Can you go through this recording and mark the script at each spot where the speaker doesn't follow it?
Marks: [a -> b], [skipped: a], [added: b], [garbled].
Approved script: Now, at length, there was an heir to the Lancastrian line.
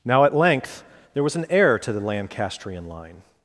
Now, at length, there was an heir to the Lancastrian line.